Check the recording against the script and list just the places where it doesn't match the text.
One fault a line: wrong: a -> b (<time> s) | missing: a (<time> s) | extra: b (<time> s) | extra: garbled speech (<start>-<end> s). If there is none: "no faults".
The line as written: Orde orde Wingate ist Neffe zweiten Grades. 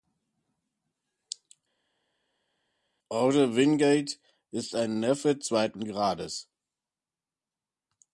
missing: orde (3.6 s)
extra: ein (4.7 s)